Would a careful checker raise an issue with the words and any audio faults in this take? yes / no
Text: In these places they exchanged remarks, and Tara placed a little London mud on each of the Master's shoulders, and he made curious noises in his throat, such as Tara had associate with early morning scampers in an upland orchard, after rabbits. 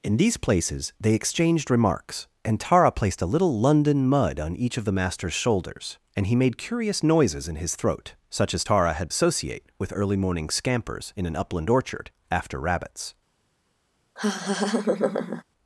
yes